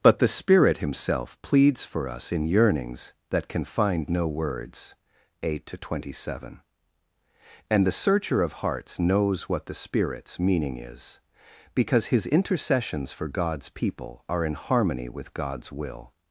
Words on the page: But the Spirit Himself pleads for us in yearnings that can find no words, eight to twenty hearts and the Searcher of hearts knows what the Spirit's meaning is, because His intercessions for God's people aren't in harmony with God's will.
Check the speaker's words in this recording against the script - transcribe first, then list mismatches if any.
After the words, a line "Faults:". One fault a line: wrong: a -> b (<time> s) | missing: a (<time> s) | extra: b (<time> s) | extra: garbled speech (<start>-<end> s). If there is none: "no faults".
But the Spirit Himself pleads for us in yearnings that can find no words, eight to twenty seven and the Searcher of hearts knows what the Spirit's meaning is, because His intercessions for God's people are in harmony with God's will.
Faults:
wrong: hearts -> seven (6.2 s)
wrong: aren't -> are (14.3 s)